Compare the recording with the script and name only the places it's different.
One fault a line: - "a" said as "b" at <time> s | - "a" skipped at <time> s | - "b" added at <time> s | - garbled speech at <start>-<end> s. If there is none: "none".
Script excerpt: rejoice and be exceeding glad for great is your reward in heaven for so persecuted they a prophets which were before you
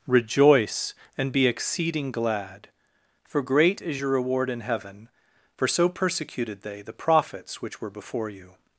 - "a" said as "the" at 6.8 s